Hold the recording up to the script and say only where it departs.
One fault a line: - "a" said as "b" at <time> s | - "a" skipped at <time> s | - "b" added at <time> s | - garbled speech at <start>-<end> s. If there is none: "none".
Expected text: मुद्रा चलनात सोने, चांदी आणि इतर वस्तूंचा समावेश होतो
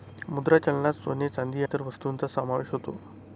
- "आणि" skipped at 1.6 s